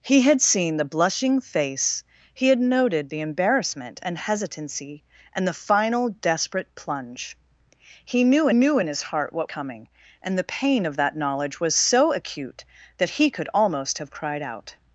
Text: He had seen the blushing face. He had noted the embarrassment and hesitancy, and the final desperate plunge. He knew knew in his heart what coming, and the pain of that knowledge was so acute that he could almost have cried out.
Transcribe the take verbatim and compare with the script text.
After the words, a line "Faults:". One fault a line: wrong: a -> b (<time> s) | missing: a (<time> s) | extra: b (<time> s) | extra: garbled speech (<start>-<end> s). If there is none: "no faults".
He had seen the blushing face. He had noted the embarrassment and hesitancy, and the final desperate plunge. He knew knew in his heart what coming, and the pain of that knowledge was so acute that he could almost have cried out.
Faults:
no faults